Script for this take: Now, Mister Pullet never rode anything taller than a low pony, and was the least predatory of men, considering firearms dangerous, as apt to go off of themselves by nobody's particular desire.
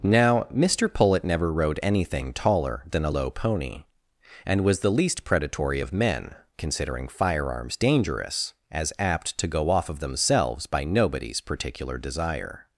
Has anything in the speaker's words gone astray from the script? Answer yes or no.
no